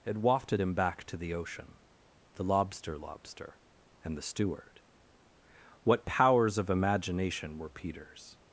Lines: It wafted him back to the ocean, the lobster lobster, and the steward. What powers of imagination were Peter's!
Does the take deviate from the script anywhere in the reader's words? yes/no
no